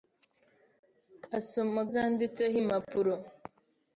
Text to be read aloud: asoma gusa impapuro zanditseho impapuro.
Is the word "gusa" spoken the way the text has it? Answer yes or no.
no